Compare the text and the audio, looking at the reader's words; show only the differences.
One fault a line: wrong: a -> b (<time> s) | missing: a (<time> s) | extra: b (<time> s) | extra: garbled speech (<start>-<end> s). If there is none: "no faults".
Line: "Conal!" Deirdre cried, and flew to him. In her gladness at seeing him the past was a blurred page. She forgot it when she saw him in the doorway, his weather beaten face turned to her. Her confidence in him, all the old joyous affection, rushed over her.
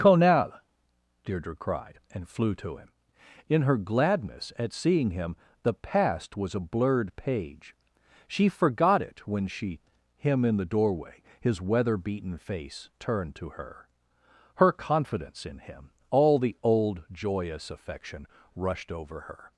missing: saw (9.8 s)